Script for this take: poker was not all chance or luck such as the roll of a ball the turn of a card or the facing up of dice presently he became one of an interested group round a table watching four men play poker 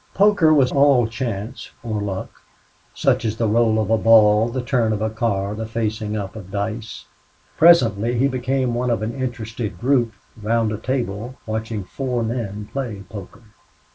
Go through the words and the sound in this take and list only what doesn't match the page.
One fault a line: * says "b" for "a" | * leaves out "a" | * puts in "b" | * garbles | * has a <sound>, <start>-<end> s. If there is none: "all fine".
* leaves out "not"
* leaves out "or"